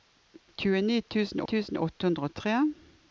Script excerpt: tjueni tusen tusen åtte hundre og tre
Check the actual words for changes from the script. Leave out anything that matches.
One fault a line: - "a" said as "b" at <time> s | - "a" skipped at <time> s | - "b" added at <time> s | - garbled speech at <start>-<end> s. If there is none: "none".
none